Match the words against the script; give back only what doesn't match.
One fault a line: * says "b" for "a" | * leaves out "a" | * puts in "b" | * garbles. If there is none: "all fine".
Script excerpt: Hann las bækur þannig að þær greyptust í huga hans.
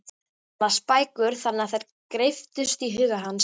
all fine